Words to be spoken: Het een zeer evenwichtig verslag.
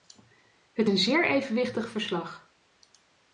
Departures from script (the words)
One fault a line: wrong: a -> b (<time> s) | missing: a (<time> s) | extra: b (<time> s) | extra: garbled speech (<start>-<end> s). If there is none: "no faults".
no faults